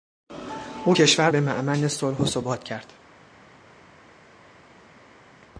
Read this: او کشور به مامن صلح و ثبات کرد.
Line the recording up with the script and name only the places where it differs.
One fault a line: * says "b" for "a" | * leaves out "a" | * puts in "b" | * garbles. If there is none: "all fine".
all fine